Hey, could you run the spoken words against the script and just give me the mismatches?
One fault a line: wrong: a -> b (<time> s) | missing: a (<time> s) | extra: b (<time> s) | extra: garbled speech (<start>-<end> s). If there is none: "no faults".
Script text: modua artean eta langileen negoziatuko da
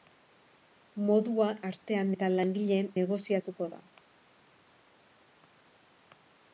no faults